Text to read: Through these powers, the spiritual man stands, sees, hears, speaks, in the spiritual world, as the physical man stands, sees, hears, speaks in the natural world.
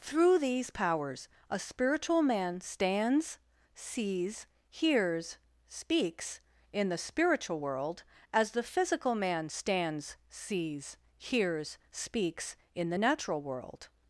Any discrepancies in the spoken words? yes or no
yes